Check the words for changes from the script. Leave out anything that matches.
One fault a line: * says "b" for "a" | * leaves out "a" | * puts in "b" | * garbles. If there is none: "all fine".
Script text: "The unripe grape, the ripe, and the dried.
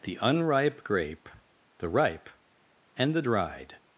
all fine